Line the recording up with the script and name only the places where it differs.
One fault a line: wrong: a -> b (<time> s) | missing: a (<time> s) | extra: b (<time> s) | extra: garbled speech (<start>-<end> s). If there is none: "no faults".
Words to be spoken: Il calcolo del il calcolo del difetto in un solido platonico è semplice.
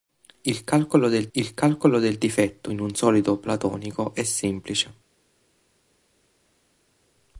no faults